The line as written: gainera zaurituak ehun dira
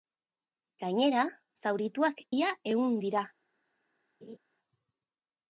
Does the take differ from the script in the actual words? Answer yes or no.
yes